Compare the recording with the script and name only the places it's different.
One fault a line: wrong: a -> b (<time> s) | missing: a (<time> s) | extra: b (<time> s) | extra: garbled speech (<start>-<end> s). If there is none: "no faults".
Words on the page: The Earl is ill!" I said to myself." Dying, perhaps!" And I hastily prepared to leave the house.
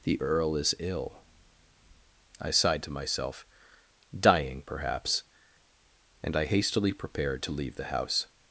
wrong: said -> sighed (2.5 s)